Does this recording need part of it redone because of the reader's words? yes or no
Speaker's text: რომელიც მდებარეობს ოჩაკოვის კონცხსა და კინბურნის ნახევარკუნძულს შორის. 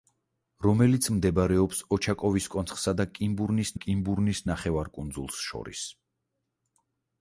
yes